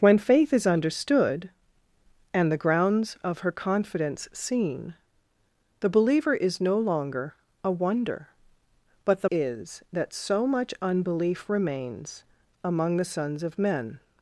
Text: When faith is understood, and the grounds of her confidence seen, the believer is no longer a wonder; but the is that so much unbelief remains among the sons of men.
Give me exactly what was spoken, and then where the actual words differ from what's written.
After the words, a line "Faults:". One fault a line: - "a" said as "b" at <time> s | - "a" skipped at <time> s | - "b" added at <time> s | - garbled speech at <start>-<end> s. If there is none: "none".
When faith is understood, and the grounds of her confidence seen, the believer is no longer a wonder; but the is that so much unbelief remains among the sons of men.
Faults:
none